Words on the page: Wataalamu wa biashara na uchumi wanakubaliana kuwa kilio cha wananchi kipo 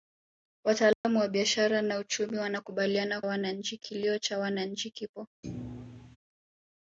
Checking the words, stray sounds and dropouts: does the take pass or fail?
fail